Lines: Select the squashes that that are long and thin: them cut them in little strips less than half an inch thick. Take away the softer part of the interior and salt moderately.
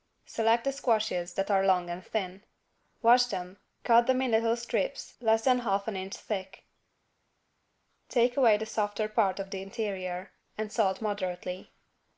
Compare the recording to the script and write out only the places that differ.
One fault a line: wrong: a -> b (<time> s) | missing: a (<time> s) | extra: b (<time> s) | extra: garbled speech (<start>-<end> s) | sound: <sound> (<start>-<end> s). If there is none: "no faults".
missing: that (1.5 s)
extra: wash (3.0 s)